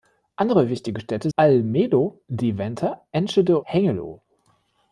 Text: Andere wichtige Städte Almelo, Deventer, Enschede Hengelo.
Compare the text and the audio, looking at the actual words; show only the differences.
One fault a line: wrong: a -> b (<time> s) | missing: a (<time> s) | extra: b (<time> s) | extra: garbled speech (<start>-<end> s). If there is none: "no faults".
no faults